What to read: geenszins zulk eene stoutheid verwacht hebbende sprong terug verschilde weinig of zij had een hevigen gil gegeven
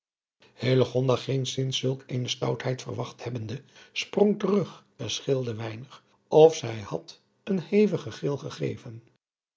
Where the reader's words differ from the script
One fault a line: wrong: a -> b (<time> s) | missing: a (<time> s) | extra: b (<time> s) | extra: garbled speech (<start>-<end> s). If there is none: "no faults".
no faults